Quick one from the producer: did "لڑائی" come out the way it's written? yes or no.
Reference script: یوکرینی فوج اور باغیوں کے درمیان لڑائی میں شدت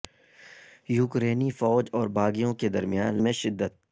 no